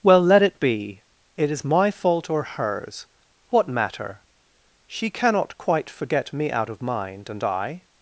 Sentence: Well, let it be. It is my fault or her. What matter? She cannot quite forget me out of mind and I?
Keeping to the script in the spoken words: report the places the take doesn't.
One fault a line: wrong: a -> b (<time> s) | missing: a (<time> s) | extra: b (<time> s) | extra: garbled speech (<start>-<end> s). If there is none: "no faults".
wrong: her -> hers (2.4 s)